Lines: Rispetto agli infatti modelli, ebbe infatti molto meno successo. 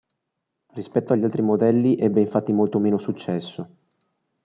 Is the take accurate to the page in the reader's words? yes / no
no